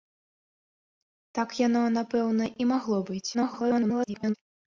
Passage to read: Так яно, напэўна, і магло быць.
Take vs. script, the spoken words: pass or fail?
fail